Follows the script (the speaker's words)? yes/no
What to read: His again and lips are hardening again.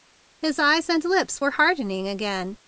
no